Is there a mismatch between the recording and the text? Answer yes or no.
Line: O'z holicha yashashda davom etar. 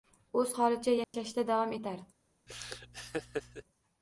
no